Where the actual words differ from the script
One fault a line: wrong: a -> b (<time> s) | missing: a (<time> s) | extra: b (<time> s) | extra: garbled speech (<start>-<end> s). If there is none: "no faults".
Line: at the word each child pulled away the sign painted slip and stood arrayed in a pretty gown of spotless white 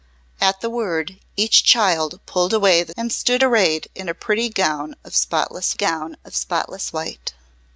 missing: sign painted slip (3.0 s)
extra: gown of spotless (5.7 s)